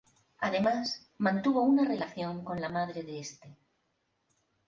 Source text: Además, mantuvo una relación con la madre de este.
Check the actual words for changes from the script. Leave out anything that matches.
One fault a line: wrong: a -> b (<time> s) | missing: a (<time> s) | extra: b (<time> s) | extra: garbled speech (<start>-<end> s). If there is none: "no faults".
no faults